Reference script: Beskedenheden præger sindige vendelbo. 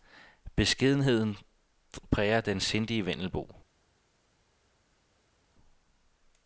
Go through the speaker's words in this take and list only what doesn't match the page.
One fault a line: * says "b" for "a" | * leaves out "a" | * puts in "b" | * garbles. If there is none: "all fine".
* puts in "den"